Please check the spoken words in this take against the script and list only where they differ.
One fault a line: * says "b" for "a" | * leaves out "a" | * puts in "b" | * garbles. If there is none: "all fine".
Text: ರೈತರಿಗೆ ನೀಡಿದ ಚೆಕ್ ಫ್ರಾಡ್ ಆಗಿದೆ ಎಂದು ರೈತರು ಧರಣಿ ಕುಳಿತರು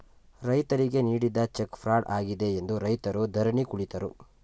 all fine